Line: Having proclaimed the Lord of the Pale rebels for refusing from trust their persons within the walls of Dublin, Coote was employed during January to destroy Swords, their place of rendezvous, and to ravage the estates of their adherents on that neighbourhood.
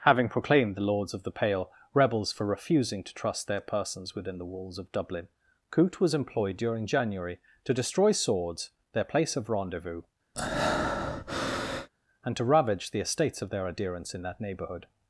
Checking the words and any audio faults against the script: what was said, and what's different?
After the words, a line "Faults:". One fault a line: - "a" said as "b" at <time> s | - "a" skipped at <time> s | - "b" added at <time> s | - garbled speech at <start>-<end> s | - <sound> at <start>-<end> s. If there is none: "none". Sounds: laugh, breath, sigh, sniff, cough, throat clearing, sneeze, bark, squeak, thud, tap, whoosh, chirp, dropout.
Having proclaimed the Lords of the Pale rebels for refusing to trust their persons within the walls of Dublin, Coote was employed during January to destroy Swords, their place of rendezvous, and to ravage the estates of their adherents in that neighbourhood.
Faults:
- "Lord" said as "Lords" at 0.8 s
- "from" said as "to" at 3.0 s
- breath at 10.3-11.9 s
- "on" said as "in" at 14.1 s